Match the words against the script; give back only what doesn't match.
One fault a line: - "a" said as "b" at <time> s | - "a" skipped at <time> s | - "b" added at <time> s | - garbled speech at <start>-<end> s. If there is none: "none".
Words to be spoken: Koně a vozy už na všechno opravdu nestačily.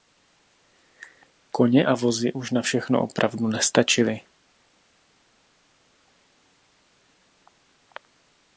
none